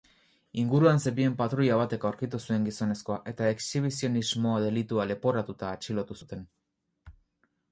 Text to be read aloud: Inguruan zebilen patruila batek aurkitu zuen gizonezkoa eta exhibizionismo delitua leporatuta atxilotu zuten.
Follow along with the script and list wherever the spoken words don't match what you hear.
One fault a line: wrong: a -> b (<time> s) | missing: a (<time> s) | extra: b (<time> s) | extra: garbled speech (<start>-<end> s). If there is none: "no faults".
no faults